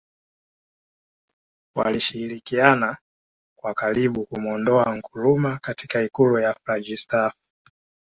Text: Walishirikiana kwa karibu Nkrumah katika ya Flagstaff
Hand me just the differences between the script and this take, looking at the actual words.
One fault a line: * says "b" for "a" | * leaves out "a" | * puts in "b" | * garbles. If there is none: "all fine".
* puts in "kumuondoa"
* puts in "ikulu"